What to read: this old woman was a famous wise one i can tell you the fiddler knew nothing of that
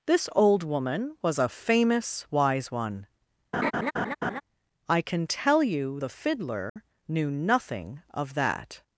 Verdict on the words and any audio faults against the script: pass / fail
fail